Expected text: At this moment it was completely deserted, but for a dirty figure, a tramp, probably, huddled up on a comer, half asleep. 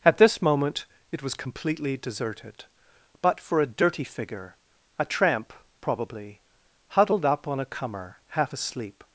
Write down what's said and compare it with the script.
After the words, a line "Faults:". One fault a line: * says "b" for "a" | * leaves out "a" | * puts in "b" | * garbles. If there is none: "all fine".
At this moment it was completely deserted, but for a dirty figure, a tramp, probably, huddled up on a comer, half asleep.
Faults:
all fine